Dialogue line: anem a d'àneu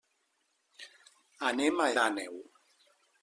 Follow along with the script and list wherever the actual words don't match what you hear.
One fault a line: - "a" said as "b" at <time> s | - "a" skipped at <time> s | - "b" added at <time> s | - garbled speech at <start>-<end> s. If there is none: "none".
none